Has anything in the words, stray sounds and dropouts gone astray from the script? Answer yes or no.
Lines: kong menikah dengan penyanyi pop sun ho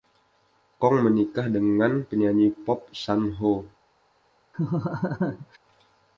yes